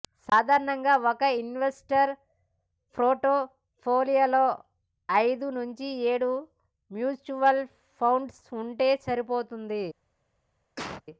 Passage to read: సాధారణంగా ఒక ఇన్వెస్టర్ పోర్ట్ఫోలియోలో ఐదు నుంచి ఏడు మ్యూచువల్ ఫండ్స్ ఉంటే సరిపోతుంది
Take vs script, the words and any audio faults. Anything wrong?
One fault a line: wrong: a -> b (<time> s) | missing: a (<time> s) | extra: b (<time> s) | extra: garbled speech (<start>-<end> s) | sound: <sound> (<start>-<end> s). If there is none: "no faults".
sound: cough (10.8-11.0 s)